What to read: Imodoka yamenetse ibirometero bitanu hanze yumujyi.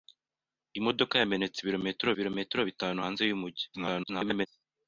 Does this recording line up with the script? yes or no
no